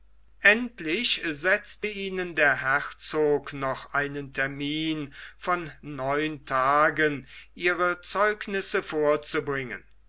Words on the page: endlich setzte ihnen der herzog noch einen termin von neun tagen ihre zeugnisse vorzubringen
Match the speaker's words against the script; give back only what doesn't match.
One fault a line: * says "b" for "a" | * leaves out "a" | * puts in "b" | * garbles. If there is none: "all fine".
all fine